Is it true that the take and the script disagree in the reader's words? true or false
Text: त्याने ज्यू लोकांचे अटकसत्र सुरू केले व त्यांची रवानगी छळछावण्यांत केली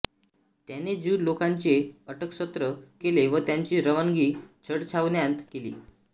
true